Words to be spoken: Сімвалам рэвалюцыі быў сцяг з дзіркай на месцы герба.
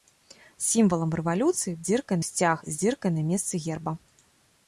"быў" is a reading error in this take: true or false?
true